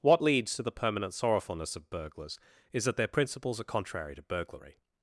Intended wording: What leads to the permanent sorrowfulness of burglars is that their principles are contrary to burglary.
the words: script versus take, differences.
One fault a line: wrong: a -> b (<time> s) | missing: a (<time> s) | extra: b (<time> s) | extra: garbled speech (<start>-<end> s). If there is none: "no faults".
no faults